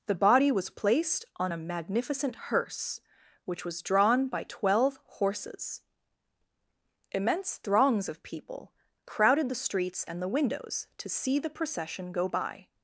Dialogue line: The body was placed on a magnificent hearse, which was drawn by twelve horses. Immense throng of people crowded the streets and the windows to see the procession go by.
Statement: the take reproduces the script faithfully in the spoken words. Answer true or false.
false